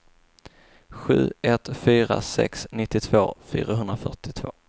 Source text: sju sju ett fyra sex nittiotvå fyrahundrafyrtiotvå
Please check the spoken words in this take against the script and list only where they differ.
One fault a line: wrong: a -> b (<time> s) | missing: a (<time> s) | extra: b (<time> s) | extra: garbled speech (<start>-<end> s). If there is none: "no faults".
missing: sju (1.3 s)